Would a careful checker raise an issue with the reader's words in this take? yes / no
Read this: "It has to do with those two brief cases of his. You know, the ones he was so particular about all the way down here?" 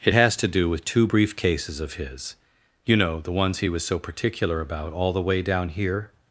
yes